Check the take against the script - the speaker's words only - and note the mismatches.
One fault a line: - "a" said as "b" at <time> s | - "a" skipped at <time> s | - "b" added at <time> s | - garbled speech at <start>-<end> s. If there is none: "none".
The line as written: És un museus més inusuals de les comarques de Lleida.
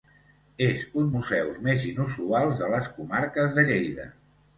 none